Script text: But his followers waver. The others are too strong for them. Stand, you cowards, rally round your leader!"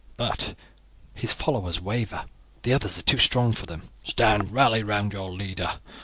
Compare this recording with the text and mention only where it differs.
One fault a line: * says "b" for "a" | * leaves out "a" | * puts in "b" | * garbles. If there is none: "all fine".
* leaves out "you cowards"